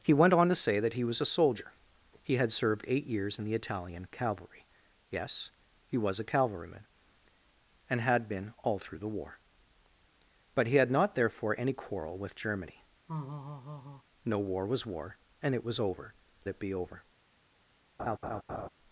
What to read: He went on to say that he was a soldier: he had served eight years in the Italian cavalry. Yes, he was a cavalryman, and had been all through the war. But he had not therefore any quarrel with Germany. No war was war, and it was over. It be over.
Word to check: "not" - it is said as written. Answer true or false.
true